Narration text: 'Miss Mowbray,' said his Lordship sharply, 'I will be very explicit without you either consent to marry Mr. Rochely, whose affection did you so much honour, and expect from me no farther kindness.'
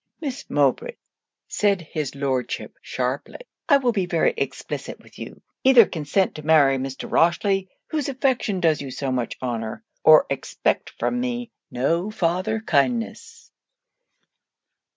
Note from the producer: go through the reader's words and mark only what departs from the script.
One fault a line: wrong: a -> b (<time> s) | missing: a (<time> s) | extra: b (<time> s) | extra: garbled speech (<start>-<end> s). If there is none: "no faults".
wrong: without -> with (5.0 s)
wrong: did -> does (8.6 s)
wrong: and -> or (10.0 s)